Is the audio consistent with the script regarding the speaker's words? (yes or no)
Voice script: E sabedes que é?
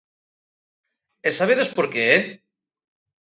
no